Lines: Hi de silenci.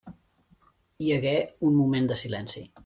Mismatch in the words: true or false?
true